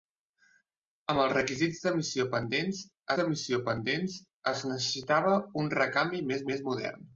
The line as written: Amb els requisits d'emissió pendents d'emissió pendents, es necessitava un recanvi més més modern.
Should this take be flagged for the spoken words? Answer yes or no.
no